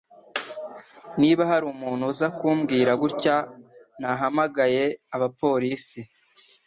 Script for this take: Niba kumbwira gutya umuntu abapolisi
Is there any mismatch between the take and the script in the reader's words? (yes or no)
yes